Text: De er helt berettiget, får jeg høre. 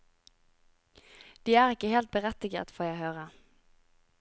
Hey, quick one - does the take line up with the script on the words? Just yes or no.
no